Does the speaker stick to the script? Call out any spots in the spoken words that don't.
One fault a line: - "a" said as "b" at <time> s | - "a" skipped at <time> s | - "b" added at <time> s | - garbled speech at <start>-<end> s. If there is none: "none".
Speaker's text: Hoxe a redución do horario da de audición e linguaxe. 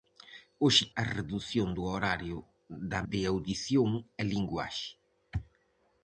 none